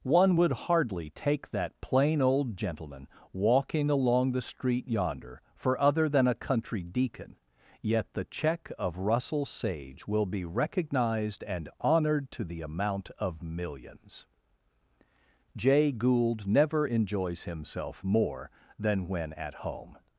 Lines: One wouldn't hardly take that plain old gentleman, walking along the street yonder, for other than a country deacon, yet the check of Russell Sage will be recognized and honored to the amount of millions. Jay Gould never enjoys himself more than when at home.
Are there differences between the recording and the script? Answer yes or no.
yes